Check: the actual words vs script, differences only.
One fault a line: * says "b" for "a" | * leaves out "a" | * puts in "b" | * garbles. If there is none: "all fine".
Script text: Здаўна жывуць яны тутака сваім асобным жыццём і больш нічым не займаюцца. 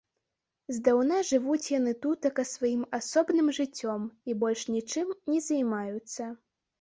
all fine